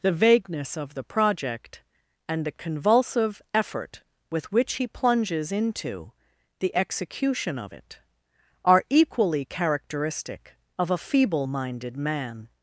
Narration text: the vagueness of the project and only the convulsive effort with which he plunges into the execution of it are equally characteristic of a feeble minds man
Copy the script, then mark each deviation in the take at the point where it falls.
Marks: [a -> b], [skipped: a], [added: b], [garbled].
the vagueness of the project and [skipped: only] the convulsive effort with which he plunges into the execution of it are equally characteristic of a feeble [minds -> minded] man